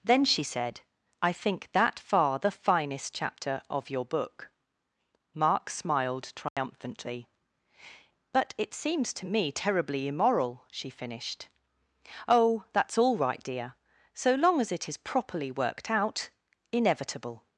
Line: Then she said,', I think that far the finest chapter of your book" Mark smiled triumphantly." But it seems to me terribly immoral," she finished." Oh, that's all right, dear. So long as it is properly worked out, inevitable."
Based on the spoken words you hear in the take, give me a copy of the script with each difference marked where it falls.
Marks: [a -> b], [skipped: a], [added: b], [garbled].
Then she said,', I think that far the finest chapter of your book" Mark smiled triumphantly." But it seems to me terribly immoral," she finished." Oh, that's all right, dear. So long as it is properly worked out, inevitable."